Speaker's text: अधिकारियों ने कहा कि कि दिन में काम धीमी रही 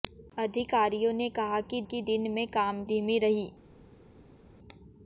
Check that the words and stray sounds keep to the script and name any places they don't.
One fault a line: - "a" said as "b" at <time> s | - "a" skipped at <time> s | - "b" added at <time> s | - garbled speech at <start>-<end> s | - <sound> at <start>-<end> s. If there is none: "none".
none